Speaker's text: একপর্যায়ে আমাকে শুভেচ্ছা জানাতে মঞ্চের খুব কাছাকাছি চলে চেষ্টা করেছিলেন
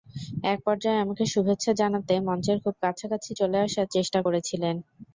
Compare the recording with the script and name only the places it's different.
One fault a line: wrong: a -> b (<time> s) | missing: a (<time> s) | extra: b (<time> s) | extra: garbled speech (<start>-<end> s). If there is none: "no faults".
extra: আসার (3.7 s)